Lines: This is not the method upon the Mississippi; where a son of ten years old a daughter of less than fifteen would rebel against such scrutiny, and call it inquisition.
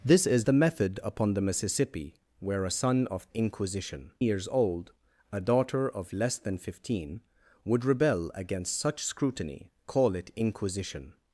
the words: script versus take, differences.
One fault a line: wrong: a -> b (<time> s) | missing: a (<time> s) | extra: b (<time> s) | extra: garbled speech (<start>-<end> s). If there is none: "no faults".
missing: not (0.5 s)
wrong: ten -> inquisition (3.3 s)
missing: and (9.7 s)